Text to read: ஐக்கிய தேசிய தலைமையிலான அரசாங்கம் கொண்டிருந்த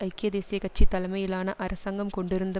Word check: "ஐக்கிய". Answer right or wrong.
right